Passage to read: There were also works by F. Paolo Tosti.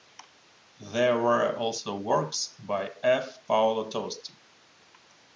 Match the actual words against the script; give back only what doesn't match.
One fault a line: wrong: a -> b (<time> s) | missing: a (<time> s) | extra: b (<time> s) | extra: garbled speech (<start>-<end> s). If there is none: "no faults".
no faults